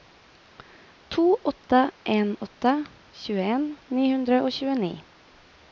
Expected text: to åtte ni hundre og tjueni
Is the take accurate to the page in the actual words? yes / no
no